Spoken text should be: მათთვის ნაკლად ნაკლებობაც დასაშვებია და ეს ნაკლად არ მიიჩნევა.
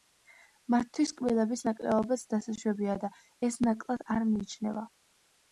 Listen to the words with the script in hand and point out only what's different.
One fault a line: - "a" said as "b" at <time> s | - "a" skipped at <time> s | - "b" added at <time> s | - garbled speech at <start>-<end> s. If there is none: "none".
- "ნაკლად" said as "კბილების" at 1.2 s